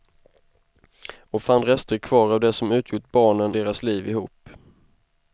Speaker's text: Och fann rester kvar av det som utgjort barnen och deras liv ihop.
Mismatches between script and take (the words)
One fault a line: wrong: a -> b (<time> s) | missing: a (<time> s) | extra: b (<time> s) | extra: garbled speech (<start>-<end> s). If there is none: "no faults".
missing: och (3.5 s)